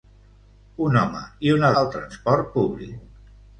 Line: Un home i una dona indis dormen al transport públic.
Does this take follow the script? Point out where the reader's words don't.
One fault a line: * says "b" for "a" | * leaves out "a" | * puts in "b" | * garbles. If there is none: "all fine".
* leaves out "dona indis dormen"